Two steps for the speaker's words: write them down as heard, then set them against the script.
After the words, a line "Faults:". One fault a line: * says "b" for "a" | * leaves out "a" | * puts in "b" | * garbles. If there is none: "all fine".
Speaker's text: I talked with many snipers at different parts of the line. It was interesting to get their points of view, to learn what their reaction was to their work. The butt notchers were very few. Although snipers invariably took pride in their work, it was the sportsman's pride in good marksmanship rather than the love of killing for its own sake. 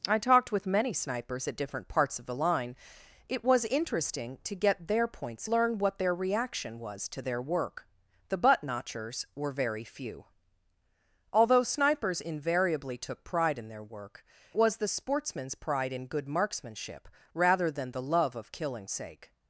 I talked with many snipers at different parts of the line. It was interesting to get their points learn what their reaction was to their work. The butt notchers were very few. Although snipers invariably took pride in their work, was the sportsman's pride in good marksmanship rather than the love of killing sake.
Faults:
* leaves out "of view to"
* leaves out "it"
* leaves out "for its own"